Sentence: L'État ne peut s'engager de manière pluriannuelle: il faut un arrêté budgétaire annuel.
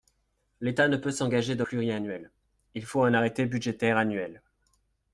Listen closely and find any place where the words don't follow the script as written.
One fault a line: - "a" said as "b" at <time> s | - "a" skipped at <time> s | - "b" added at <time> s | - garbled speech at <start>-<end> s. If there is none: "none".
- "manière" skipped at 1.6 s